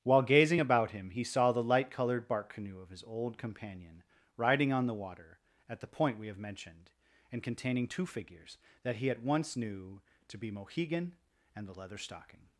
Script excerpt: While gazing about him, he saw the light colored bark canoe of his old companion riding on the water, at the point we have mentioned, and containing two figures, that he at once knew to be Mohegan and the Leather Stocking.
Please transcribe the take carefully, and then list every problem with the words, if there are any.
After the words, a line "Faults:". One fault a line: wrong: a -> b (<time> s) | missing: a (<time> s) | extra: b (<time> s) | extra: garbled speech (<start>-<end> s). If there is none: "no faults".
While gazing about him, he saw the light colored bark canoe of his old companion riding on the water, at the point we have mentioned, and containing two figures, that he at once knew to be Mohegan and the Leather Stocking.
Faults:
no faults